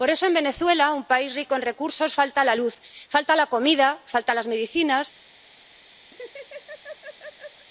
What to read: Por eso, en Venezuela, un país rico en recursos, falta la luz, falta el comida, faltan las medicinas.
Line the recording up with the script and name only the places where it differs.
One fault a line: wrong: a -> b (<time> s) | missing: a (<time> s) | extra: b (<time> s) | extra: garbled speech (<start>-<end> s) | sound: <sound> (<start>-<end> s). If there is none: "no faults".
wrong: el -> la (3.3 s)
sound: laugh (6.1-7.7 s)